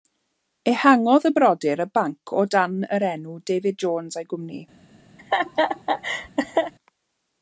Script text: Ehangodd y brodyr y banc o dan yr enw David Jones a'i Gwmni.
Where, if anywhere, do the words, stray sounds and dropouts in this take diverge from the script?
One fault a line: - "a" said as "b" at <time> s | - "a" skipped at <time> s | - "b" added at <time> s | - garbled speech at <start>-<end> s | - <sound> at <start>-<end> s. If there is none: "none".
- laugh at 5.2-6.7 s